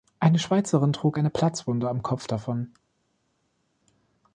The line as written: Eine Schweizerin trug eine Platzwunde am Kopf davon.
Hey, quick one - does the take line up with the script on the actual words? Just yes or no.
yes